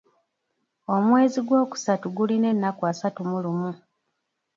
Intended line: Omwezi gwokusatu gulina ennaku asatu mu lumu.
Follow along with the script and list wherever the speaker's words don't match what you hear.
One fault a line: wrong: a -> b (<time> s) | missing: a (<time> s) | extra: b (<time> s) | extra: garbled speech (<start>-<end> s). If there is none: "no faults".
no faults